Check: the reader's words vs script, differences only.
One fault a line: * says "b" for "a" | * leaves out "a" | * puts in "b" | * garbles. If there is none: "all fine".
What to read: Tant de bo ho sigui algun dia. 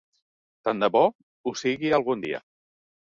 all fine